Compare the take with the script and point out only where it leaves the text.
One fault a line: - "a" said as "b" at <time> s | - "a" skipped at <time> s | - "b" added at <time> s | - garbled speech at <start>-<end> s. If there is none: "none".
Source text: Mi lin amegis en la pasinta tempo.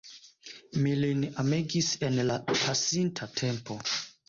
none